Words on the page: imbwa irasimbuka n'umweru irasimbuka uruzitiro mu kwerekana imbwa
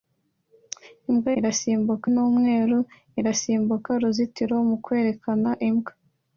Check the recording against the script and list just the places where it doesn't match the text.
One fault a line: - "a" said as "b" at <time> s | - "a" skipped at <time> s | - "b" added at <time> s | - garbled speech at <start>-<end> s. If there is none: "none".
none